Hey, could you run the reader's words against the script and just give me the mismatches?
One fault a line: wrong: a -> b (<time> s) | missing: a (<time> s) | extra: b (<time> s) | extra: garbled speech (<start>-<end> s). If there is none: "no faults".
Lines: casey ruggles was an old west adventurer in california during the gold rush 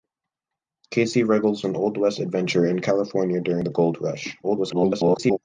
missing: was (1.6 s)
extra: garbled speech (4.4-5.4 s)